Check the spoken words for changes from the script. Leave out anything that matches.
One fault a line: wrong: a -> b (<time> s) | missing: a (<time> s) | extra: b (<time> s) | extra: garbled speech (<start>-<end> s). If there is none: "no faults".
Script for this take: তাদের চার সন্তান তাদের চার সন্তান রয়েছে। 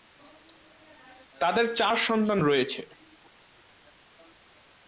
missing: তাদের চার সন্তান (2.4 s)